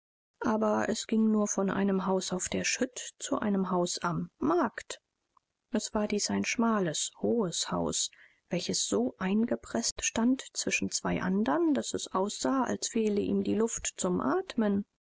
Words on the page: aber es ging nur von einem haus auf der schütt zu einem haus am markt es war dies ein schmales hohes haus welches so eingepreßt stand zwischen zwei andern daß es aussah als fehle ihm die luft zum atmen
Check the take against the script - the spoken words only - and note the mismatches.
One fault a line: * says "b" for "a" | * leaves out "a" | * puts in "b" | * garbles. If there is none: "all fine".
all fine